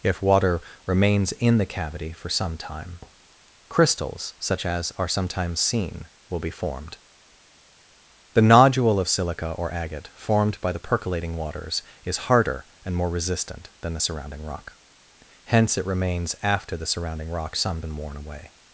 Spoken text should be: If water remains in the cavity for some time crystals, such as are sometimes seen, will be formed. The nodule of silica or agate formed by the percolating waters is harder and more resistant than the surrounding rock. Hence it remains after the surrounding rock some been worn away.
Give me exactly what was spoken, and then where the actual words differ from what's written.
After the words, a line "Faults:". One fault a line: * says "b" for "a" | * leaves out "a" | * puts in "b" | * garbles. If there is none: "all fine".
If water remains in the cavity for some time crystals, such as are sometimes seen, will be formed. The nodule of silica or agate formed by the percolating waters is harder and more resistant than the surrounding rock. Hence it remains after the surrounding rock some been worn away.
Faults:
all fine